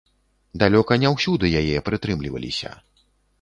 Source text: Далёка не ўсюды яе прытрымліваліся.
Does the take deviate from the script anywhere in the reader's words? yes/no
no